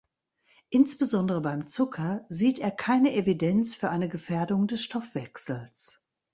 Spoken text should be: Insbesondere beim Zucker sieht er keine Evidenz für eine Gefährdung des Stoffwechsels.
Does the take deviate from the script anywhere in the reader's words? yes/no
no